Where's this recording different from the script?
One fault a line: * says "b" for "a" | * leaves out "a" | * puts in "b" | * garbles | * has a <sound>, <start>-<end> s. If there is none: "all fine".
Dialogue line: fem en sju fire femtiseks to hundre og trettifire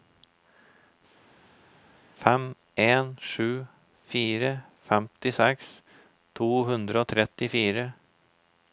all fine